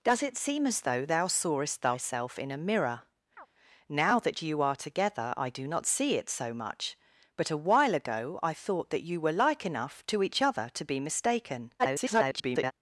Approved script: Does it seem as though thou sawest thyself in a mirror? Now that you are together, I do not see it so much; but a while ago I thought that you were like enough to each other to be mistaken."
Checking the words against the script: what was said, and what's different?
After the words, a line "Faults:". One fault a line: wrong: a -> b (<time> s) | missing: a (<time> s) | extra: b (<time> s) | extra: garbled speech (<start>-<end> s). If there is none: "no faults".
Does it seem as though thou sawest thyself in a mirror? Now that you are together, I do not see it so much; but a while ago I thought that you were like enough to each other to be mistaken." [garbled]
Faults:
extra: garbled speech (11.8-12.7 s)